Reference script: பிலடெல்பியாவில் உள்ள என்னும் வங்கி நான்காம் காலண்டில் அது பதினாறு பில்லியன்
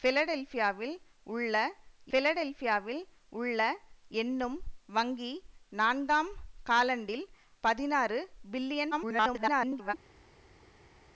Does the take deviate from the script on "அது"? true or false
true